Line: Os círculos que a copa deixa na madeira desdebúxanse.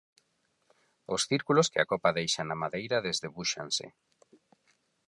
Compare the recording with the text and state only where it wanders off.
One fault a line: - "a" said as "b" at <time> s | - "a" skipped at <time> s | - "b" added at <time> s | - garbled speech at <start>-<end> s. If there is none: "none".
none